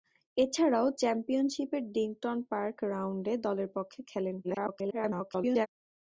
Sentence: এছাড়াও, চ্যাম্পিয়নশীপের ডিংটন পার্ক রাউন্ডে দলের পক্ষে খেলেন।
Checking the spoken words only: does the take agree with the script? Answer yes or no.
no